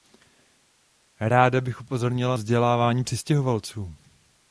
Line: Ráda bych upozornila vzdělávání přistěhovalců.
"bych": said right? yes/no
yes